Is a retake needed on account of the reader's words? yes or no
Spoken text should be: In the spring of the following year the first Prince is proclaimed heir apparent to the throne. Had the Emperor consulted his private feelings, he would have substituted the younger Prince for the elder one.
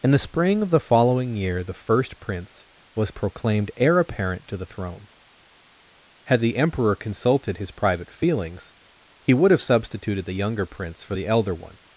yes